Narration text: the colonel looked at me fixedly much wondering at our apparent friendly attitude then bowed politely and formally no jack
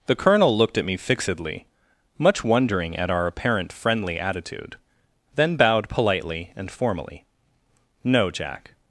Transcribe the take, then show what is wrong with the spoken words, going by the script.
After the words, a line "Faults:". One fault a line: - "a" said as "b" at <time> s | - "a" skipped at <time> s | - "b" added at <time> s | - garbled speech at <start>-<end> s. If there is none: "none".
the colonel looked at me fixedly much wondering at our apparent friendly attitude then bowed politely and formally no jack
Faults:
none